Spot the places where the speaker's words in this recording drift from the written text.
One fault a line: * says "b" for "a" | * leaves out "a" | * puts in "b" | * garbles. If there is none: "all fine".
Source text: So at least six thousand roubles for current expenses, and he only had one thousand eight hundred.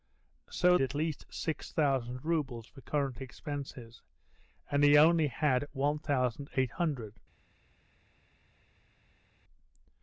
all fine